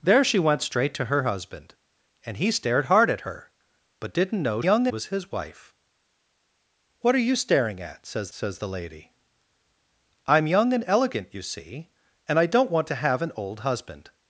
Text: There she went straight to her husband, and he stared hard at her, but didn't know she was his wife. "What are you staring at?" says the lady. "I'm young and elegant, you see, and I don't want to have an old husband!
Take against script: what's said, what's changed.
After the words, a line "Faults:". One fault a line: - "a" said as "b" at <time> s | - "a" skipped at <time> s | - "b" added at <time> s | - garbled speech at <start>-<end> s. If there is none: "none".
There she went straight to her husband, and he stared hard at her, but didn't know young was his wife. "What are you staring at?" says says the lady. "I'm young and elegant, you see, and I don't want to have an old husband!
Faults:
- "she" said as "young" at 4.6 s
- "says" added at 8.3 s